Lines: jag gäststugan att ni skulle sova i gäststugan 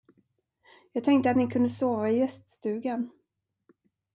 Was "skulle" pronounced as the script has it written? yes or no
no